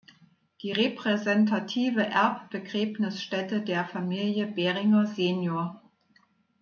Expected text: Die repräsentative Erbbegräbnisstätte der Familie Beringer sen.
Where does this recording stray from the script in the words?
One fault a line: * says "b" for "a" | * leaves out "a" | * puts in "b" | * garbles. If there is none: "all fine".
all fine